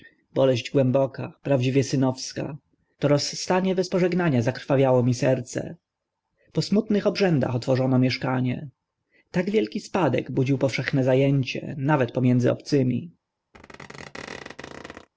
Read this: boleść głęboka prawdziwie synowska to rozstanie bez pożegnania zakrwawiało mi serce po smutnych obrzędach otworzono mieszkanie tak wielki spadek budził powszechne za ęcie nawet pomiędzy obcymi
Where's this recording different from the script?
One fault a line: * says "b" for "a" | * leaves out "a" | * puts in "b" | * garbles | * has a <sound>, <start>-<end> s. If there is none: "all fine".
* has a squeak, 13.5-15.1 s